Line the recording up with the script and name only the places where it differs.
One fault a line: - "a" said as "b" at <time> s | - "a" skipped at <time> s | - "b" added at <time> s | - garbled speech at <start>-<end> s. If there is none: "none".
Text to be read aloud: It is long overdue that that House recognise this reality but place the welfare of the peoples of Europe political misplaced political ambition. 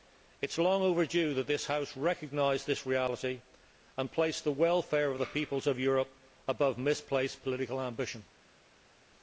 - "that" said as "this" at 1.4 s
- "but" said as "and" at 4.0 s
- "political" said as "above" at 6.5 s